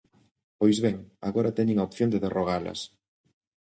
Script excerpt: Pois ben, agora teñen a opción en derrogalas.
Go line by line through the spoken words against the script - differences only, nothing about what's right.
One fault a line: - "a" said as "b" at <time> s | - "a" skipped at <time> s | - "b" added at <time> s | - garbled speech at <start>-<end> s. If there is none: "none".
- "en" said as "de" at 2.1 s